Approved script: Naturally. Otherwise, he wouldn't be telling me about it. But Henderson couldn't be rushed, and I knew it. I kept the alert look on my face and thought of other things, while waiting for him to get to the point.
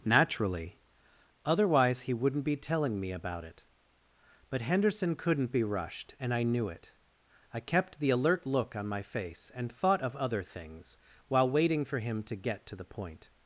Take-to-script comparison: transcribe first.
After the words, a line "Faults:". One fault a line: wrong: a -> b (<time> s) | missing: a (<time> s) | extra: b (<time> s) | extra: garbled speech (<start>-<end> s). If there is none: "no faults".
Naturally. Otherwise, he wouldn't be telling me about it. But Henderson couldn't be rushed, and I knew it. I kept the alert look on my face and thought of other things, while waiting for him to get to the point.
Faults:
no faults